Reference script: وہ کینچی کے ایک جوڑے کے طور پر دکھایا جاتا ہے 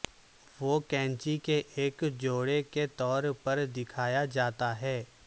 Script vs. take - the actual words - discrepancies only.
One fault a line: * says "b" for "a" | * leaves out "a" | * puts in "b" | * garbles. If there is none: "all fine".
all fine